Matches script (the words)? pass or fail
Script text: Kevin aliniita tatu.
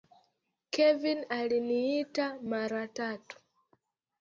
fail